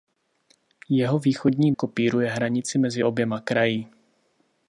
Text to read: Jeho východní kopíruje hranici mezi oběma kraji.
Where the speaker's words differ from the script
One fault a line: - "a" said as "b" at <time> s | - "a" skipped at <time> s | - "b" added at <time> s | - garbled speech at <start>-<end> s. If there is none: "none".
none